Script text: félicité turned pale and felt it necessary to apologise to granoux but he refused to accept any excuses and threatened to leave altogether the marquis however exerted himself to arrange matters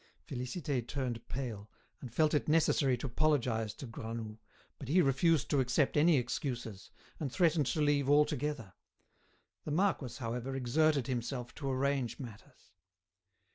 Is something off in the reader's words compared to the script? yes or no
no